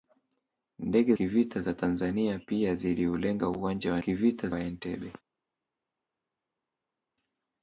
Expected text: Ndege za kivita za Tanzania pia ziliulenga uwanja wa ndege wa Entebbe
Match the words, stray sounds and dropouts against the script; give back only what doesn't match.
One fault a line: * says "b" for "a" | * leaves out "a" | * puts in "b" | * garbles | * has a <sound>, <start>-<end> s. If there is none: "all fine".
* leaves out "za"
* says "kivita" for "ndege"